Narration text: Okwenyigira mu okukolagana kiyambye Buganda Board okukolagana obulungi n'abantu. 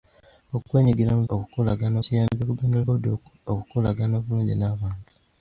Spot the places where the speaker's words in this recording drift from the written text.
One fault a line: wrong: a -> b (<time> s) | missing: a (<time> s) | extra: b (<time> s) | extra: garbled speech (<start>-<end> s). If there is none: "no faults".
no faults